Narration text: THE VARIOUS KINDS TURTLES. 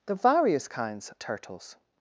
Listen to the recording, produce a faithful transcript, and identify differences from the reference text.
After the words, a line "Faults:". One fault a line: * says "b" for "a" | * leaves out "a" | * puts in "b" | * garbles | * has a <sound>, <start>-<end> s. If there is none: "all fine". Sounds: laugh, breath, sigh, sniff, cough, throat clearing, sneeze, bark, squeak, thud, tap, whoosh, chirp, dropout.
THE VARIOUS KINDS TURTLES.
Faults:
all fine